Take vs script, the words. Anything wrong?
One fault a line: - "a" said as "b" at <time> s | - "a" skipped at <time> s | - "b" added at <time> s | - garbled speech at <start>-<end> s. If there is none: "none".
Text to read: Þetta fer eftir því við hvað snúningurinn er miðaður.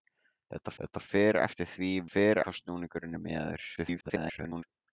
- "þetta" added at 0.8 s
- "við" said as "fer" at 2.1 s
- garbled speech at 3.8-4.6 s